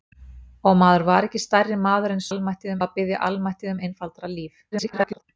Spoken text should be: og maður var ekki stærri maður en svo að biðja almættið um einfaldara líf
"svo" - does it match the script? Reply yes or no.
no